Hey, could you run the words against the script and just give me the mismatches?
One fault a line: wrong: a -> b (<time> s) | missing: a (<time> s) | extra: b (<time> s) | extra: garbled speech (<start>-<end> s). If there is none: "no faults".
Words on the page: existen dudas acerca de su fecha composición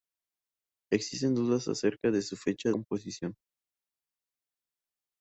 no faults